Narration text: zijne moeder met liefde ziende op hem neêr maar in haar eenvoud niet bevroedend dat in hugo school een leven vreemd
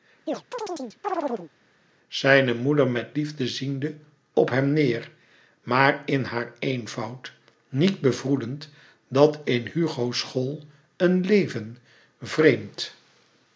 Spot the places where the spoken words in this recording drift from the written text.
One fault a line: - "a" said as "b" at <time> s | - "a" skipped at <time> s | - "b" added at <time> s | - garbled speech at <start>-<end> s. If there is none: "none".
none